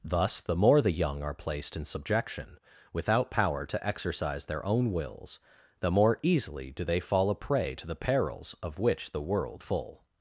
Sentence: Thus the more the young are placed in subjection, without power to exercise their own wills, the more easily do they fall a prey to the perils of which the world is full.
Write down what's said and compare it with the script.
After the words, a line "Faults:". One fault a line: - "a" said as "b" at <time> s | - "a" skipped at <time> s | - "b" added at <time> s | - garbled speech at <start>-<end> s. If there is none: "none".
Thus the more the young are placed in subjection, without power to exercise their own wills, the more easily do they fall a prey to the perils of which the world full.
Faults:
- "is" skipped at 9.6 s